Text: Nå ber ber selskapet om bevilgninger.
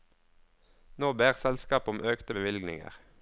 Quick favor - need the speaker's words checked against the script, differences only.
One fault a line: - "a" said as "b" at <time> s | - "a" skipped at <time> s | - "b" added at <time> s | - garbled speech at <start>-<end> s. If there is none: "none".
- "ber" skipped at 1.4 s
- "økte" added at 2.0 s